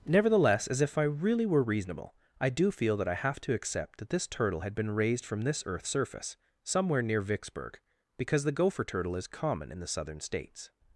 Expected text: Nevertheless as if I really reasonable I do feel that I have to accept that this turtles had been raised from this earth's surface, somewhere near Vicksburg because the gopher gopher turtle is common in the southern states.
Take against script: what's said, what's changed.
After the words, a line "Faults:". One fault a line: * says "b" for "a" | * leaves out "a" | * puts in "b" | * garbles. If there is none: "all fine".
Nevertheless as if I really were reasonable I do feel that I have to accept that this turtle had been raised from this earth's surface, somewhere near Vicksburg because the gopher turtle is common in the southern states.
Faults:
* puts in "were"
* says "turtle" for "turtles"
* leaves out "gopher"